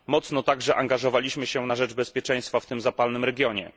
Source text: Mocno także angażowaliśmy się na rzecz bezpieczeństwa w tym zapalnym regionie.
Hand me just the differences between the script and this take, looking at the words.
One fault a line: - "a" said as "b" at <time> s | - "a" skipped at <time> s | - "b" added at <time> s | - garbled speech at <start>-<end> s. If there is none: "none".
none